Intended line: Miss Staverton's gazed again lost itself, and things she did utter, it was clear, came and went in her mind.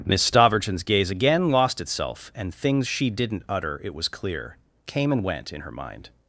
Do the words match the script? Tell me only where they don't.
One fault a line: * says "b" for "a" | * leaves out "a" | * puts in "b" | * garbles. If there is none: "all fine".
* says "gaze" for "gazed"
* says "didn't" for "did"